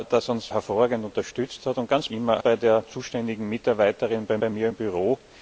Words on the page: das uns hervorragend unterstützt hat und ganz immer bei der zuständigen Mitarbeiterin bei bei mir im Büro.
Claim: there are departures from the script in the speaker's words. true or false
false